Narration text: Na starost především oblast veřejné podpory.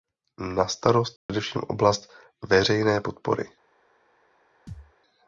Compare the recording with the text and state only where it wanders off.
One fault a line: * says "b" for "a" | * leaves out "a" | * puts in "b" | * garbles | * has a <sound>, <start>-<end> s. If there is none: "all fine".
* has a dropout, 1.2-1.3 s
* has a thud, 4.7-4.9 s